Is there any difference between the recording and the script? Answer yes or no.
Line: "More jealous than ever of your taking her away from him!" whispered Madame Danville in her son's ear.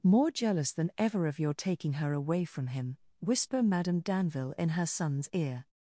yes